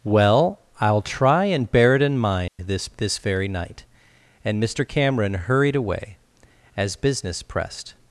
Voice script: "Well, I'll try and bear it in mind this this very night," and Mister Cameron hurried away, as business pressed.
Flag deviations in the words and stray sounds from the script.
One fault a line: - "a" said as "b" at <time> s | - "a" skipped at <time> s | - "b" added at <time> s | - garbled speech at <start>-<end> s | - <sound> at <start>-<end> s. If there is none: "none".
- dropout at 2.5-2.6 s